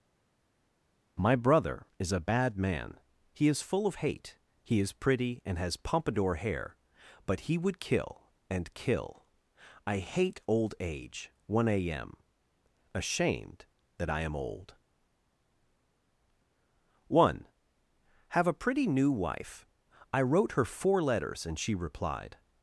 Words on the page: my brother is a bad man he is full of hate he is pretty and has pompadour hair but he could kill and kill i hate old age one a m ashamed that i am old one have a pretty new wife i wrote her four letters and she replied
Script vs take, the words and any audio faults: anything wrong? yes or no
yes